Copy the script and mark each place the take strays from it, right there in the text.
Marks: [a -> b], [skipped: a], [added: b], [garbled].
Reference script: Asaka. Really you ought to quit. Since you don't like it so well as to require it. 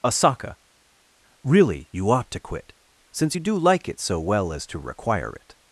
Asaka. Really you ought to quit. Since you [don't -> do] like it so well as to require it.